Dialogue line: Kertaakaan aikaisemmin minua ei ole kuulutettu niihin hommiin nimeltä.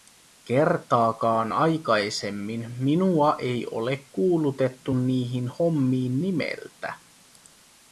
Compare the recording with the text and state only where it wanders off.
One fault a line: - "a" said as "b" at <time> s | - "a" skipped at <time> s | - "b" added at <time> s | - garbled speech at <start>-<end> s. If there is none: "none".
none